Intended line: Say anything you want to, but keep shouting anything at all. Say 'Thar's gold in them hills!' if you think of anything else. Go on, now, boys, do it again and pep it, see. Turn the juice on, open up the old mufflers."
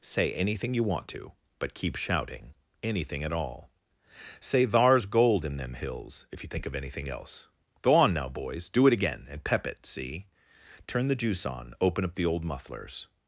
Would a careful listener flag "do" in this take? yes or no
no